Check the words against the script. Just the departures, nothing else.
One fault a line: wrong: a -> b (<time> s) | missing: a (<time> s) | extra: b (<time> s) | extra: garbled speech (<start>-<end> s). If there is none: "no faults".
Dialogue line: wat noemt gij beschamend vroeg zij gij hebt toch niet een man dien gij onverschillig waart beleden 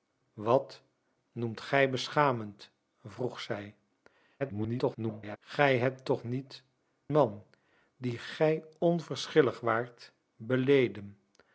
extra: garbled speech (4.4-5.4 s)
missing: een (6.6 s)